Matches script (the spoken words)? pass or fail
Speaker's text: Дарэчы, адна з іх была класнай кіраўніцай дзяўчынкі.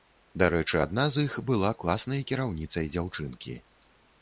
pass